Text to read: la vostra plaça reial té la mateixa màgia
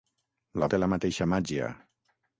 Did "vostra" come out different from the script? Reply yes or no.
yes